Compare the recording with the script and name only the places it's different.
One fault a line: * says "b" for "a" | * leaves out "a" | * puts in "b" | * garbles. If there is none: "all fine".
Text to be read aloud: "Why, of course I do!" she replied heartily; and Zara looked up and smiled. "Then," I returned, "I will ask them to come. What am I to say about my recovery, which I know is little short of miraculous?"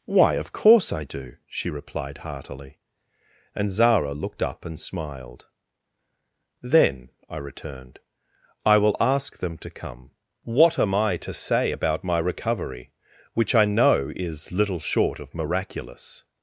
all fine